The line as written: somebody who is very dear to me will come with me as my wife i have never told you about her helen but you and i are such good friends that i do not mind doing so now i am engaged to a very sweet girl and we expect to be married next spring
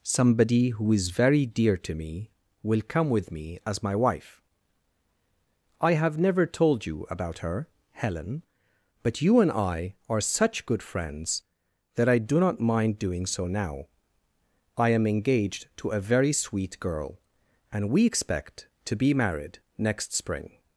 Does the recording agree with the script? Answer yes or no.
yes